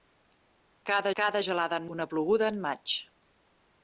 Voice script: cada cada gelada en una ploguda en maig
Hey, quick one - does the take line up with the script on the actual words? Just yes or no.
yes